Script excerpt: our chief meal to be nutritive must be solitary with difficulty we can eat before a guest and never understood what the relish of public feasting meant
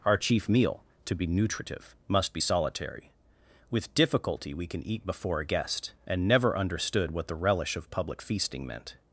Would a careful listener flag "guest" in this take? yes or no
no